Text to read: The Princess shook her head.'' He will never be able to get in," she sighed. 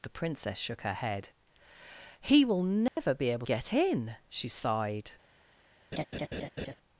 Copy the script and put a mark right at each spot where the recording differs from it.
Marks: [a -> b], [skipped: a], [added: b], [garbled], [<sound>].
The Princess shook her head.'' He will never [dropout] be able [skipped: to] get in," she sighed. [laugh]